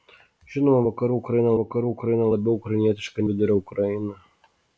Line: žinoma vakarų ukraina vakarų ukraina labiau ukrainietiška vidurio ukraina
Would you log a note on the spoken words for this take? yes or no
no